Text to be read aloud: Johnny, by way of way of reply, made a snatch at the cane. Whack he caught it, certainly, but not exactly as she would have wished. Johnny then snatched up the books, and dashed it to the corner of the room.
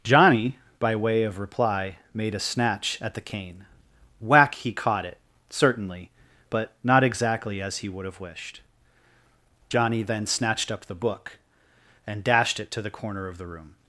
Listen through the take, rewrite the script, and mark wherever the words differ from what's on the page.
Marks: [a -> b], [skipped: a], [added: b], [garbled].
Johnny, by way of [skipped: way of] reply, made a snatch at the cane. Whack he caught it, certainly, but not exactly as [she -> he] would have wished. Johnny then snatched up the [books, -> book] and dashed it to the corner of the room.